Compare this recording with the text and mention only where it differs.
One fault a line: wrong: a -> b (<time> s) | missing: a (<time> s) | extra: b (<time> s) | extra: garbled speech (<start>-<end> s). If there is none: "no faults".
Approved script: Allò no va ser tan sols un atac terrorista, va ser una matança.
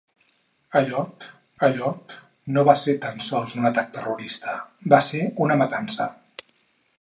extra: allò (1.7 s)